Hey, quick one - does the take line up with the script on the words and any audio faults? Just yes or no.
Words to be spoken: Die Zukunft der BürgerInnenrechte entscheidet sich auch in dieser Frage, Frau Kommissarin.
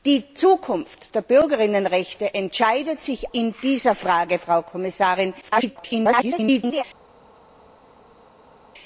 no